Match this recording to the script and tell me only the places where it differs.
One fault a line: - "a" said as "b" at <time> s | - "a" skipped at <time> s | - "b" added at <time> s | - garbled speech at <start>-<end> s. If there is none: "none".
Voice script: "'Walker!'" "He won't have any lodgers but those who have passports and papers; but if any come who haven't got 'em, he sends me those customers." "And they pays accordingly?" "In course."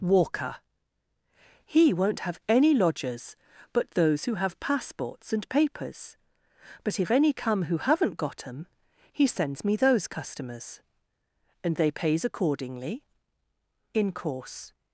none